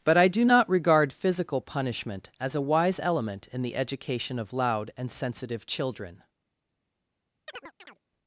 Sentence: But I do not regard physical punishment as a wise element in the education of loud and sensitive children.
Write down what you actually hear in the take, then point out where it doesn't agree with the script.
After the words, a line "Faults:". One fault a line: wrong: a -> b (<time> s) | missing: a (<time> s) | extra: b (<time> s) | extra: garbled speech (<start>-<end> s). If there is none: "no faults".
But I do not regard physical punishment as a wise element in the education of loud and sensitive children.
Faults:
no faults